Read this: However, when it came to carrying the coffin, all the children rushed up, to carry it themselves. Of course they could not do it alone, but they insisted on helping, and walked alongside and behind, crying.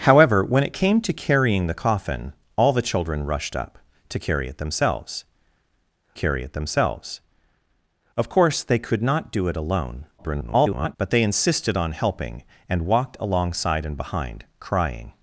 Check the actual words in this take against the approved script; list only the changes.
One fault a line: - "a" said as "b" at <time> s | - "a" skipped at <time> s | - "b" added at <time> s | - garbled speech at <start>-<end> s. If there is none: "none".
- "carry it themselves" added at 6.1 s
- garbled speech at 10.2-11.0 s